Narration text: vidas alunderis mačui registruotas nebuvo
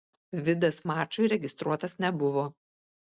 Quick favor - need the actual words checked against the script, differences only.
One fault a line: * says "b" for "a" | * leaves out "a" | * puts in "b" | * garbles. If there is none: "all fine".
* leaves out "alunderis"